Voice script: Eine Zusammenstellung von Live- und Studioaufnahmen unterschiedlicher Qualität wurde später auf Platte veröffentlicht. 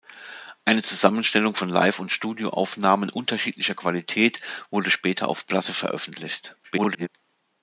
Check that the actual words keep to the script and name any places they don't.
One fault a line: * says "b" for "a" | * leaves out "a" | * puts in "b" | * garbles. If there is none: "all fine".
* garbles